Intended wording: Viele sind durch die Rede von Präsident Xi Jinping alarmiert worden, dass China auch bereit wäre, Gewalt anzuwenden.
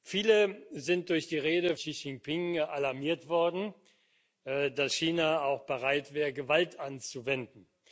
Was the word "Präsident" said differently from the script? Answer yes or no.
yes